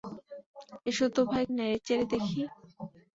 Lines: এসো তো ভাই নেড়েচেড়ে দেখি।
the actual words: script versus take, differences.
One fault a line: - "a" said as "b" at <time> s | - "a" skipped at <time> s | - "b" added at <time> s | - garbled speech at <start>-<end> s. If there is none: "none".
none